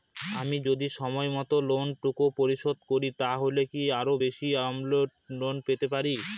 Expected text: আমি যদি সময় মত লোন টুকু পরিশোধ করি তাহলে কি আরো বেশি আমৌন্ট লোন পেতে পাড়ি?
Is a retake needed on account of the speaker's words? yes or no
no